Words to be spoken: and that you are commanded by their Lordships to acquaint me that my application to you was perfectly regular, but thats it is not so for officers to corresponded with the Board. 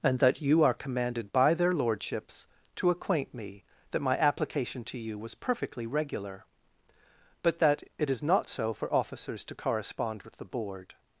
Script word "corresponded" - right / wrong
wrong